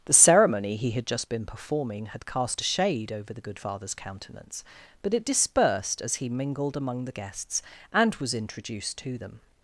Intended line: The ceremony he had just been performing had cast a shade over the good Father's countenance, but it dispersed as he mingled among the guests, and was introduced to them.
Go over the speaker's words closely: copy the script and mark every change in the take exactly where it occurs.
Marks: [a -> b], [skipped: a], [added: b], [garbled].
The ceremony he had just been performing had cast a shade over the good Father's countenance, but it dispersed as he mingled among the guests, and was introduced to them.